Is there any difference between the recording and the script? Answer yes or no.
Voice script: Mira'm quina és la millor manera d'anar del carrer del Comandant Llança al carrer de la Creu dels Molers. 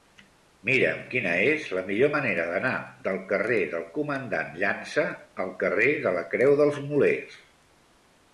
no